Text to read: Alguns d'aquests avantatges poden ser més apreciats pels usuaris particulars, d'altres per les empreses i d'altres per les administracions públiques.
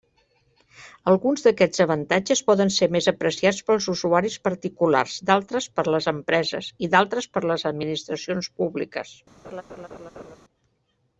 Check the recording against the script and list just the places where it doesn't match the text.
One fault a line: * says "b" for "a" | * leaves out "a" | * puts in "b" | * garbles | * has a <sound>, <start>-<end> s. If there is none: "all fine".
* has a laugh, 9.4-10.4 s